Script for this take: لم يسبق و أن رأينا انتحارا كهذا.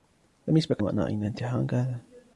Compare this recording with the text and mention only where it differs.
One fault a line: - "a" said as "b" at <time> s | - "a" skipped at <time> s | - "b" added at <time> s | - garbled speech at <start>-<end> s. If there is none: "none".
none